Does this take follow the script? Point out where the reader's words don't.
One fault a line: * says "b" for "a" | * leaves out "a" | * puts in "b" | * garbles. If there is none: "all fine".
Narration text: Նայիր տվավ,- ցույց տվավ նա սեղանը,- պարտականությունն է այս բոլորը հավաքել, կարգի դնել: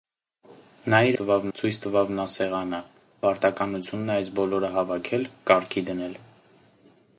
all fine